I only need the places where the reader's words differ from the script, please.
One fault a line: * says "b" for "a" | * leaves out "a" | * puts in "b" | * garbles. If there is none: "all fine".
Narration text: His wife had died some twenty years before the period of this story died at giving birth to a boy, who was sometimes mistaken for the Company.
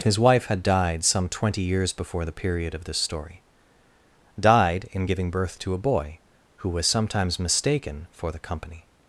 * says "in" for "at"